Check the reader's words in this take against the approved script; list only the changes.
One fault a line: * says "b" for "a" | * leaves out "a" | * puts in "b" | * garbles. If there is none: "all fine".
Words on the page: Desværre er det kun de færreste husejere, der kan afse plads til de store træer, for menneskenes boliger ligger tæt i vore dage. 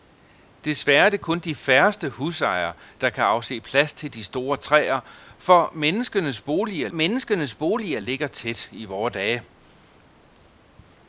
* puts in "menneskenes boliger"